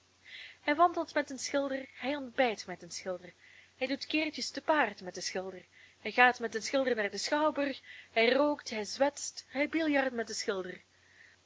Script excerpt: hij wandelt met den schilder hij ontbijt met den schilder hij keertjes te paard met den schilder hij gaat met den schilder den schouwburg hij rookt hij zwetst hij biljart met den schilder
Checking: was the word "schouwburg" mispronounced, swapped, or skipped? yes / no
no